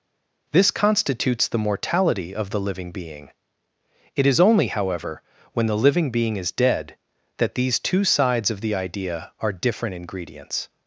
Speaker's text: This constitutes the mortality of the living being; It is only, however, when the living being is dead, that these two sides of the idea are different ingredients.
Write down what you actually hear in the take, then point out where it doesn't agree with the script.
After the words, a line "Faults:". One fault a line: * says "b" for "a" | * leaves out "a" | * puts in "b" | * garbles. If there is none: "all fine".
This constitutes the mortality of the living being; It is only, however, when the living being is dead, that these two sides of the idea are different ingredients.
Faults:
all fine